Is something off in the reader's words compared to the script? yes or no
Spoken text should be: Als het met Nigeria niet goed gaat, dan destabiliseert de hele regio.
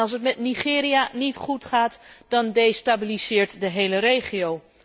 no